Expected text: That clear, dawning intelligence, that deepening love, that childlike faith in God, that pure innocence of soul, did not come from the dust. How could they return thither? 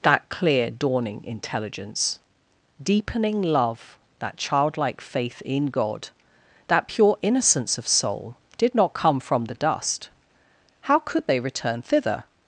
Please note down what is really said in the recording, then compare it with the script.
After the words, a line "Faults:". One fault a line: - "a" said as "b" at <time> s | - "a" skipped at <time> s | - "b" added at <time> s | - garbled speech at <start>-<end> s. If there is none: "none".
That clear, dawning intelligence, deepening love, that childlike faith in God, that pure innocence of soul, did not come from the dust. How could they return thither?
Faults:
- "that" skipped at 2.2 s